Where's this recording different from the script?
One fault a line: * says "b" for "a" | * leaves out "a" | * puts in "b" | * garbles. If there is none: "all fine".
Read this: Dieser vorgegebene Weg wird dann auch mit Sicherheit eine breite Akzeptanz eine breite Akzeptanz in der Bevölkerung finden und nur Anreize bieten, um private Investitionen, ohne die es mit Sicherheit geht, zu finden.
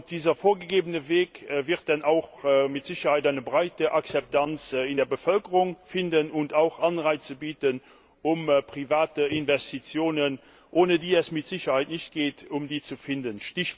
* leaves out "eine breite Akzeptanz"
* says "auch" for "nur"
* puts in "nicht"